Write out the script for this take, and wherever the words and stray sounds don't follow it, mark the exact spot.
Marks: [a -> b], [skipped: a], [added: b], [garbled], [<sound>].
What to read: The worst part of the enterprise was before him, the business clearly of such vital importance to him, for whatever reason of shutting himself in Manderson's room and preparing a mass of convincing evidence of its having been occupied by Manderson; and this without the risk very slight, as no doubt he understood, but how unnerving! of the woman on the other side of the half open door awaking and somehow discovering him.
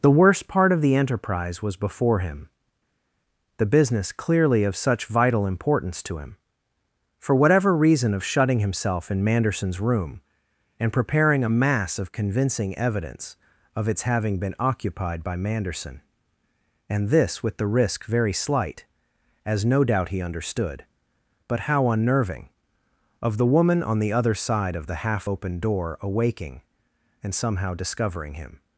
The worst part of the enterprise was before him, the business clearly of such vital importance to him, for whatever reason of shutting himself in Manderson's room and preparing a mass of convincing evidence of its having been occupied by Manderson; and this [without -> with] the risk very slight, as no doubt he understood, but how unnerving! of the woman on the other side of the half open door awaking and somehow discovering him.